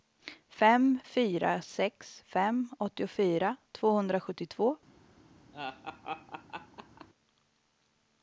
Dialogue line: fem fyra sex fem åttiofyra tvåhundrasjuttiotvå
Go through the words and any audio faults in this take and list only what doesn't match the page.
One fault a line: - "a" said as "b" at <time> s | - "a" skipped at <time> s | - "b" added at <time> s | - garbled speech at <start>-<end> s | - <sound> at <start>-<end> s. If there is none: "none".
- laugh at 5.5-7.1 s